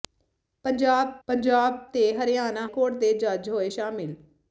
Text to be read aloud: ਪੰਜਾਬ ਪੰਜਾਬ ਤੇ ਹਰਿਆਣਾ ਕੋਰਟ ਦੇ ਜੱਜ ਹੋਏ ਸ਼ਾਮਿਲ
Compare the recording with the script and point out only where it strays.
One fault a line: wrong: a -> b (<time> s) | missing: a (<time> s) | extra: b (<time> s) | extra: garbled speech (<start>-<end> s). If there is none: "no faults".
no faults